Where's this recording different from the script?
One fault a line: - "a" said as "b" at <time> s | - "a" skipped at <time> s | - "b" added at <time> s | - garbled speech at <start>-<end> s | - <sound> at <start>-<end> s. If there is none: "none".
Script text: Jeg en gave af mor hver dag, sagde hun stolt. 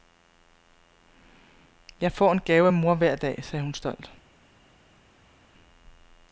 - "får" added at 2.1 s